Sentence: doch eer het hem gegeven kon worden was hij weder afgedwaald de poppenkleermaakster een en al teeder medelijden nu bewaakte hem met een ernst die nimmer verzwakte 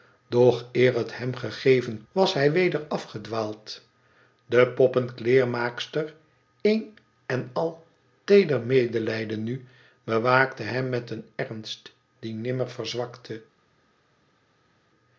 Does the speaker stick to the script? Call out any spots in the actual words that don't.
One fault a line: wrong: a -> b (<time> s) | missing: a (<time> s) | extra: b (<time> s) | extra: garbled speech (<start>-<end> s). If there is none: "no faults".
missing: kon worden (2.0 s)